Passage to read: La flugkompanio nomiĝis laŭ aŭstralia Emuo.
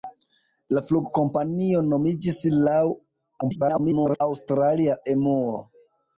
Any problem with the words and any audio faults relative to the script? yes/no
yes